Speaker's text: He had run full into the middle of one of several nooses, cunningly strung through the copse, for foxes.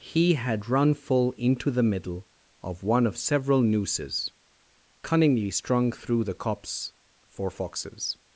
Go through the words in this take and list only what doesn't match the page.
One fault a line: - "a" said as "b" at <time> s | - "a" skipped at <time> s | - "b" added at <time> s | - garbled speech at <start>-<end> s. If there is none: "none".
none